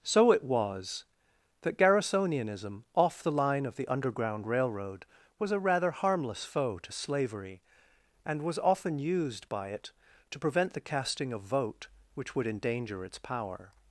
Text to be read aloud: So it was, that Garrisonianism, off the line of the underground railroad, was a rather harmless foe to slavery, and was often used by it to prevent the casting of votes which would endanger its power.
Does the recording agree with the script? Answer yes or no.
no